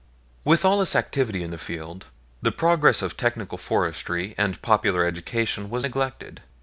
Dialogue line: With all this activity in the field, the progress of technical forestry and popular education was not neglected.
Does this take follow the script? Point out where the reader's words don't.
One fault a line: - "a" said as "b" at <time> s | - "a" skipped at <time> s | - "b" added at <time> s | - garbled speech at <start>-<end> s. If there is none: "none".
- "not" skipped at 5.8 s